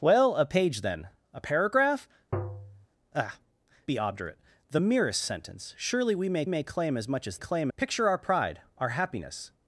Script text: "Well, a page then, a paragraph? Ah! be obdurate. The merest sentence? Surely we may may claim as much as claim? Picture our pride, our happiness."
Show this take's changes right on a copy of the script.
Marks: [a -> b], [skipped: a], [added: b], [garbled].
"Well, a page then, a paragraph? Ah! be obdurate. The merest sentence? Surely we may may claim as much as claim? Picture our pride, our happiness."